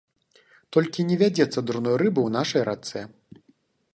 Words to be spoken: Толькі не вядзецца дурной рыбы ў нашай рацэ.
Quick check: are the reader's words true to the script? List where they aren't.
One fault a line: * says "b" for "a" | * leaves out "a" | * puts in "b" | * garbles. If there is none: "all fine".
all fine